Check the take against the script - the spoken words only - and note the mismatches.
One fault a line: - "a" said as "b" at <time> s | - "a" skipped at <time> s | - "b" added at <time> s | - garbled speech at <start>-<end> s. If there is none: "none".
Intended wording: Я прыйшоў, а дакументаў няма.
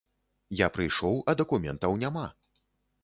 none